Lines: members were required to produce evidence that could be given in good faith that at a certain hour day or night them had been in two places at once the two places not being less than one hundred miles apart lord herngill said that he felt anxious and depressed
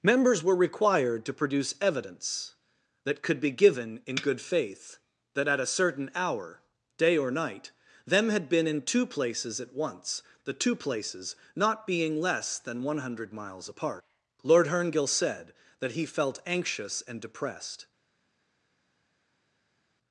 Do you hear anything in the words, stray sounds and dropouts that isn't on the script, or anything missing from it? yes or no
no